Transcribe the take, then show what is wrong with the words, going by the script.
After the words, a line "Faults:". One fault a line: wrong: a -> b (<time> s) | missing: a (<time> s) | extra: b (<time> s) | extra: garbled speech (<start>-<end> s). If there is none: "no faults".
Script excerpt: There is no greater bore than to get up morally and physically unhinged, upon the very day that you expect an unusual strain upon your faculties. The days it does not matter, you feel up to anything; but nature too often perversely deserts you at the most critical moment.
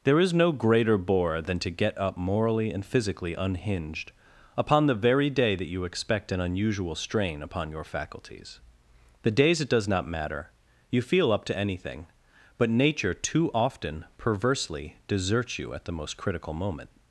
There is no greater bore than to get up morally and physically unhinged, upon the very day that you expect an unusual strain upon your faculties. The days it does not matter, you feel up to anything; but nature too often perversely deserts you at the most critical moment.
Faults:
no faults